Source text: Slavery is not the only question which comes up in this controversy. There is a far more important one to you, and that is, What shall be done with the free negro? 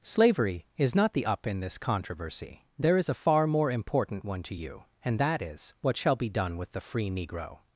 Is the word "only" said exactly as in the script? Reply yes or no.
no